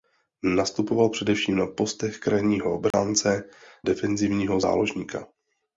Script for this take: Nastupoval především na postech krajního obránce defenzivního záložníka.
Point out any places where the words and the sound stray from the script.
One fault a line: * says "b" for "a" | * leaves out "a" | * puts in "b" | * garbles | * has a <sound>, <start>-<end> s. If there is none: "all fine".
* has a dropout, 2.9-2.9 s